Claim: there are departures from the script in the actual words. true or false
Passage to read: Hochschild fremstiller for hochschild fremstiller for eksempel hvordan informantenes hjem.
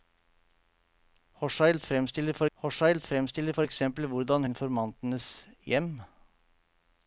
false